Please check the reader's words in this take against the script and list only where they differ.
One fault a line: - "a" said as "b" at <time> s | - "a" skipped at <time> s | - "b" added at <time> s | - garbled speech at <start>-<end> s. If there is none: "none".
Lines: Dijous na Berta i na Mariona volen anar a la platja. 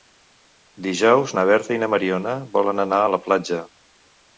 none